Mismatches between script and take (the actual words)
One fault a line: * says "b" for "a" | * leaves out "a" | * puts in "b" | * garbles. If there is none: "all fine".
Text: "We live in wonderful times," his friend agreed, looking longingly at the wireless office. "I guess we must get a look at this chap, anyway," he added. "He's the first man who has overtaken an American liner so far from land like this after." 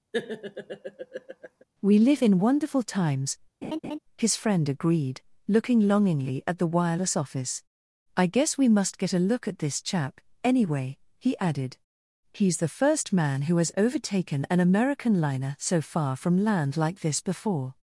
* says "before" for "after"